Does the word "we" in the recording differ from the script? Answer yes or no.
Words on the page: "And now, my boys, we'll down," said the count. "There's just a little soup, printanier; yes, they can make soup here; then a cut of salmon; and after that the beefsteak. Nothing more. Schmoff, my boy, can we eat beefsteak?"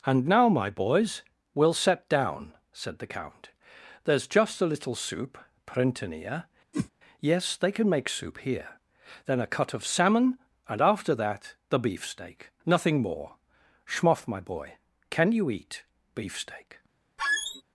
yes